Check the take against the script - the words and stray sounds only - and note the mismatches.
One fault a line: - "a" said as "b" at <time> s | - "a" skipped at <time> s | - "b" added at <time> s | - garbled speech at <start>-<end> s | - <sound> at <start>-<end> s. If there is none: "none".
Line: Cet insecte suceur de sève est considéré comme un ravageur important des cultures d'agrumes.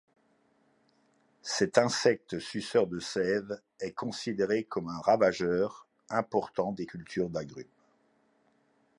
none